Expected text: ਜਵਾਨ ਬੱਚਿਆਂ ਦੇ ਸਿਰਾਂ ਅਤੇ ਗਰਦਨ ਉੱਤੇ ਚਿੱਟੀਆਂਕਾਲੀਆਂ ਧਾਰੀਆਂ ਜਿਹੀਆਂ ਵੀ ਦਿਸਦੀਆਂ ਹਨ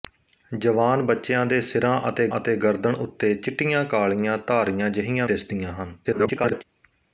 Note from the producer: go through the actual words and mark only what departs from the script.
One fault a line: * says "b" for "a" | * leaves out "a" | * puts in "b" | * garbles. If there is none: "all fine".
* puts in "ਅਤੇ"
* leaves out "ਵੀ"
* garbles